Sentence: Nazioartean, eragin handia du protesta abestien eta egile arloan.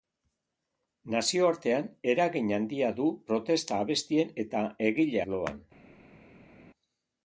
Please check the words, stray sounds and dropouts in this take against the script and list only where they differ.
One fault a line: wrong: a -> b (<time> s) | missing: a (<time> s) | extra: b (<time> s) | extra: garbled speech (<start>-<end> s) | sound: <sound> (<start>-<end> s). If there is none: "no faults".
no faults